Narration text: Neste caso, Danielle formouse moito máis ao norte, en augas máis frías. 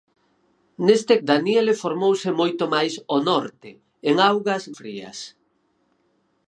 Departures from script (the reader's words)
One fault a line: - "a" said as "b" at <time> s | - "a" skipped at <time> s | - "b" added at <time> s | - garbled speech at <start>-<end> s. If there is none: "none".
- "caso" skipped at 1.1 s
- "máis" skipped at 4.6 s